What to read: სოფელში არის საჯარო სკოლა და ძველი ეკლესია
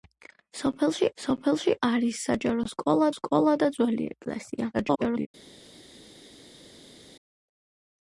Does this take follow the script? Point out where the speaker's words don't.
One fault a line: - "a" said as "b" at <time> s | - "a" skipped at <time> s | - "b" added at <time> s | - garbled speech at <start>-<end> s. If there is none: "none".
- "სოფელში" added at 1.2 s
- "სკოლა" added at 3.2 s
- garbled speech at 4.7-5.3 s